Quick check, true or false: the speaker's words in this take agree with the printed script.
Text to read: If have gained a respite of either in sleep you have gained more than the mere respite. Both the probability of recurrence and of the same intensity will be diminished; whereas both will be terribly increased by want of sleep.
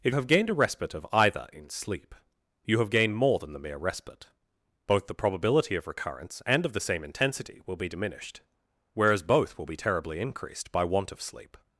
true